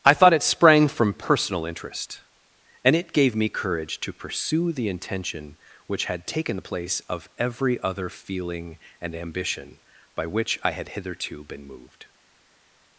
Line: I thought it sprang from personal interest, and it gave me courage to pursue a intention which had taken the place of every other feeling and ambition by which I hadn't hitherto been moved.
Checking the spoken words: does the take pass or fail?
fail